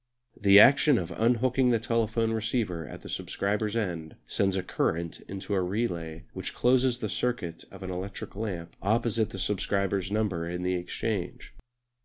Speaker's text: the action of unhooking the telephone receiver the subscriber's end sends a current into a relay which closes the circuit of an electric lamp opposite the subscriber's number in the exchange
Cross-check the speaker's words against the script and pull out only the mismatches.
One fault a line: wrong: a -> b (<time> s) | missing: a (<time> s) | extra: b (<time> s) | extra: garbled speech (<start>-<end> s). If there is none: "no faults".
extra: at (2.9 s)